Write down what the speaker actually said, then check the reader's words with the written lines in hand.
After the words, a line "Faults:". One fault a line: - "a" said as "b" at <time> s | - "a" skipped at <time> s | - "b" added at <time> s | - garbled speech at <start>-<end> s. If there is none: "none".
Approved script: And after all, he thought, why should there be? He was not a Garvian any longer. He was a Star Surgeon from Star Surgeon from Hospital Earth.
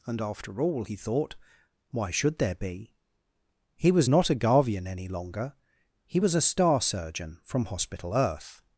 And after all, he thought, why should there be? He was not a Garvian any longer. He was a Star Surgeon from Hospital Earth.
Faults:
- "Star Surgeon from" skipped at 7.7 s